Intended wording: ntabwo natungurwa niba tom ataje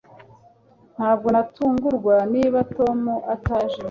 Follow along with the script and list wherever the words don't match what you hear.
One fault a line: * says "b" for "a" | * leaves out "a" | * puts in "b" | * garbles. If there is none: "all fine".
all fine